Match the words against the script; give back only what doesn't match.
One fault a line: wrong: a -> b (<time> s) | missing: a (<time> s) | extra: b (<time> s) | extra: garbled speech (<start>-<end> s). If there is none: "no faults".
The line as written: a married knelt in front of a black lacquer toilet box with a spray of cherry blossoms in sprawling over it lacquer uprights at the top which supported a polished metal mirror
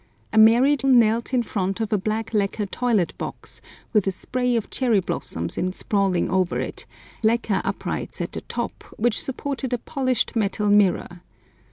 no faults